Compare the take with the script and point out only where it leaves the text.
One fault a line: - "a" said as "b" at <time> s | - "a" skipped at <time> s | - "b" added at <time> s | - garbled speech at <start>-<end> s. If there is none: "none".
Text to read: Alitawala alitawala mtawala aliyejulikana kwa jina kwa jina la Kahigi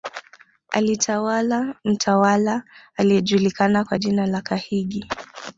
- "alitawala" skipped at 1.8 s
- "kwa jina" skipped at 4.3 s